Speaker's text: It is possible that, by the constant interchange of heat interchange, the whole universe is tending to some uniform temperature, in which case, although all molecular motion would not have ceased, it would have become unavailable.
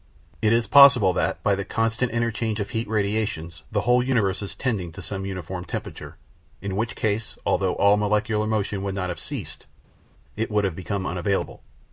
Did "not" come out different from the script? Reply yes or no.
no